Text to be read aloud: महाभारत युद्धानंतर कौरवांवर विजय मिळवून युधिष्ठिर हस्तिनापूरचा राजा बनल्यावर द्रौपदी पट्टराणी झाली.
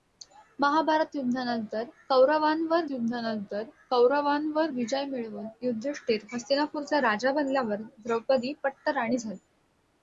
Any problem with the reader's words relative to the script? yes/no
yes